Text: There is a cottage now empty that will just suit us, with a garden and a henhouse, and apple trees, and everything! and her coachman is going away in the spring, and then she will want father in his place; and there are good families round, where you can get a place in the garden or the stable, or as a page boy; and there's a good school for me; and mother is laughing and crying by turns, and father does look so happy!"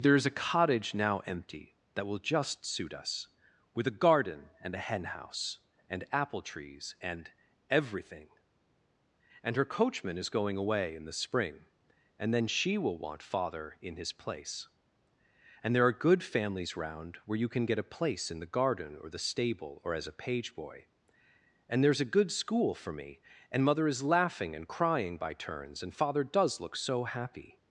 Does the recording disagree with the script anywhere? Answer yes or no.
no